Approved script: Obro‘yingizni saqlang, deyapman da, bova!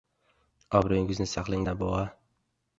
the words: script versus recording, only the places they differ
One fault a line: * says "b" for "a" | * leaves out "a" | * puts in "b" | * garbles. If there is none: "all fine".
* leaves out "deyapman"